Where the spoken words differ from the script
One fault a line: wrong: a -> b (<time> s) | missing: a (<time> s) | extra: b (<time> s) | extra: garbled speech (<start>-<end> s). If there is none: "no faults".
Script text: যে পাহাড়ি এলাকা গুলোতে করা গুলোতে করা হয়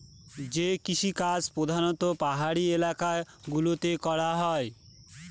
extra: কৃষিকাজ প্রধানত (0.8 s)
missing: গুলোতে করা (4.3 s)